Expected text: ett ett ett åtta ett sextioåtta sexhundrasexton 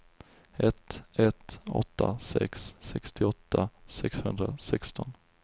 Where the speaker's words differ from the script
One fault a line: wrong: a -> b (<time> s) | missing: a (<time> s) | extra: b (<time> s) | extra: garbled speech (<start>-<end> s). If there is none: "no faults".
missing: ett (1.6 s)
wrong: ett -> sex (2.2 s)